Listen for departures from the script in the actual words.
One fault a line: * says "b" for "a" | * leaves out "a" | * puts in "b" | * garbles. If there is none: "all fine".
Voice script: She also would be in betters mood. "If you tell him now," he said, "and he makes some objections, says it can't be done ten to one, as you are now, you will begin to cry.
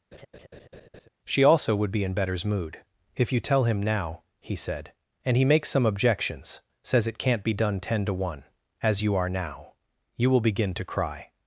all fine